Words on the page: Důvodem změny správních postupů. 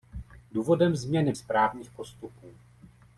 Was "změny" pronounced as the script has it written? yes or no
yes